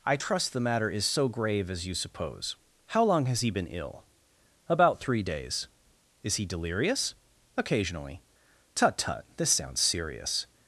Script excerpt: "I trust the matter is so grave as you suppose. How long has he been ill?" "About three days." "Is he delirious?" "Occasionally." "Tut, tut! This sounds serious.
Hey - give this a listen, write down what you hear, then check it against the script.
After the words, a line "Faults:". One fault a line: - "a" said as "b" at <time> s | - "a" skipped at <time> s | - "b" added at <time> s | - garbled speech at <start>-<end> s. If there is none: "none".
"I trust the matter is so grave as you suppose. How long has he been ill?" "About three days." "Is he delirious?" "Occasionally." "Tut, tut! This sounds serious.
Faults:
none